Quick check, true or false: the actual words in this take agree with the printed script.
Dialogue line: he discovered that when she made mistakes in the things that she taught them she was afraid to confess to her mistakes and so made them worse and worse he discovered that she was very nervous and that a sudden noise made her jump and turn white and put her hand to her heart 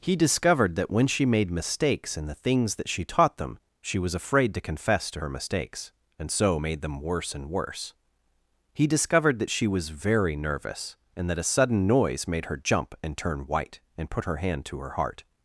true